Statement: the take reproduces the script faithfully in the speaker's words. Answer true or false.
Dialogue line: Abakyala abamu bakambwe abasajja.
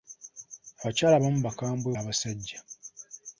true